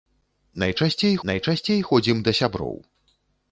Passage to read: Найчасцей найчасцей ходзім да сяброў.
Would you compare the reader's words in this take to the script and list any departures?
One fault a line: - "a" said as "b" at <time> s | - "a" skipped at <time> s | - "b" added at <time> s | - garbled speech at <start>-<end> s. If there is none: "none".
none